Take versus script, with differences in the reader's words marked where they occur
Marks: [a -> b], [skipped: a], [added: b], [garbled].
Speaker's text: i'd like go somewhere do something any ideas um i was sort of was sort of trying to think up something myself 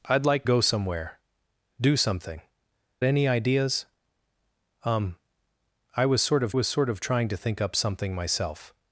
i'd like go somewhere do something any ideas um i was sort of was sort of trying to think up something myself